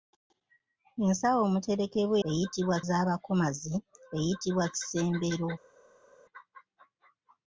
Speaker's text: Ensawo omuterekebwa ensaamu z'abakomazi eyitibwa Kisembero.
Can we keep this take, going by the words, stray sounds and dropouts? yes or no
no